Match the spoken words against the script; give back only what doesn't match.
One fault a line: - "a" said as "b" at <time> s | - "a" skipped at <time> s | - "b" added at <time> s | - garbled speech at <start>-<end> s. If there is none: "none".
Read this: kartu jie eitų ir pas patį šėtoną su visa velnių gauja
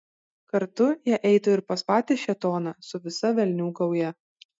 none